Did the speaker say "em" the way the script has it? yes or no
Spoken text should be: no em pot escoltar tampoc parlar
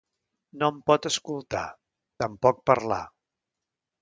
yes